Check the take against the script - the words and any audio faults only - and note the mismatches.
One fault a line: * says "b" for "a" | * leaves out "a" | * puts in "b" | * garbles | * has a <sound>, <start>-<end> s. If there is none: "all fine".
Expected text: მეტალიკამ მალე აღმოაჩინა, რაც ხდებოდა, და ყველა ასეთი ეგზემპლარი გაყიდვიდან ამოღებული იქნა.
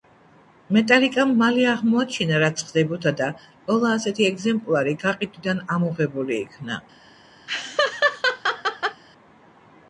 * has a laugh, 7.5-9.0 s